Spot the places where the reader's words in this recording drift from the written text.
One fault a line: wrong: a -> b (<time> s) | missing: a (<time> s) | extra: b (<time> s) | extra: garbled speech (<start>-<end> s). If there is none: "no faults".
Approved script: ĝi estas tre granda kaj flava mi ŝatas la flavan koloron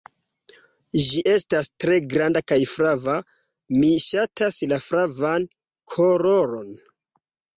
no faults